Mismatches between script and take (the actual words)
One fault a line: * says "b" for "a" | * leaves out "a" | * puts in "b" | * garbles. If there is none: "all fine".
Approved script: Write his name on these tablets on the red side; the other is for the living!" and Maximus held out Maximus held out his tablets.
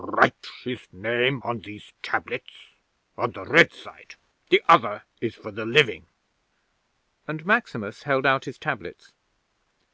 * leaves out "Maximus held out"